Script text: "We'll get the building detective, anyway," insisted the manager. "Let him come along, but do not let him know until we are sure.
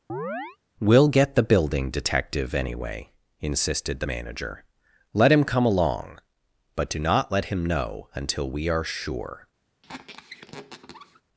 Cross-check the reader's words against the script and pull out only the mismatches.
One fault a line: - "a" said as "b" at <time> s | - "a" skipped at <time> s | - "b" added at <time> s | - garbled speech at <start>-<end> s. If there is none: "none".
none